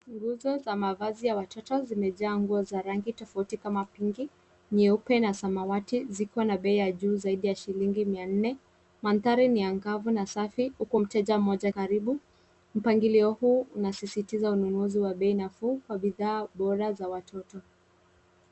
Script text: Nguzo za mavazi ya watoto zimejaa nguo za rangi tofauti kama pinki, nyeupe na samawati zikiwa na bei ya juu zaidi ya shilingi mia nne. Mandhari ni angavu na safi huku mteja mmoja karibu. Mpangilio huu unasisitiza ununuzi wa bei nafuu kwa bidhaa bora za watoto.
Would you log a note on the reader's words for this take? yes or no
no